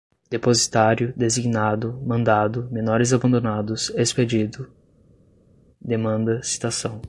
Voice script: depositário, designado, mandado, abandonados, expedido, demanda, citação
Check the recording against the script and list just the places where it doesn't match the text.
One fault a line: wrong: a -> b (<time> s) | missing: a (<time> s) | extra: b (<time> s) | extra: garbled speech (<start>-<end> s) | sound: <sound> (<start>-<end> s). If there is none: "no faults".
extra: menores (2.7 s)